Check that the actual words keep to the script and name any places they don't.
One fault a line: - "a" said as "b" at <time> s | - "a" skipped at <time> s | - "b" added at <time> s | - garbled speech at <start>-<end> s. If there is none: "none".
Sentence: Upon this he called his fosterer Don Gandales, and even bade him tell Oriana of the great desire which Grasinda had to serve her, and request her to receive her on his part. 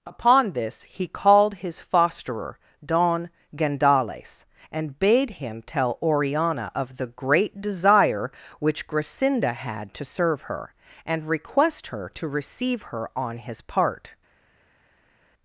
- "even" skipped at 5.0 s